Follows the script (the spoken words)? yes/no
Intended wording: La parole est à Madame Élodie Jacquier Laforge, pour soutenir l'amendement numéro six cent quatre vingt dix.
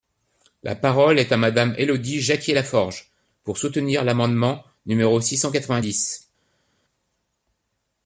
yes